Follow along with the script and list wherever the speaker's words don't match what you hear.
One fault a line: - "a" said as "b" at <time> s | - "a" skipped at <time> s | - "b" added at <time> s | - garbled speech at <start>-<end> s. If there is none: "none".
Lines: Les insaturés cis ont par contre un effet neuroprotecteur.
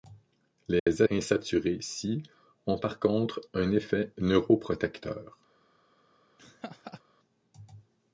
none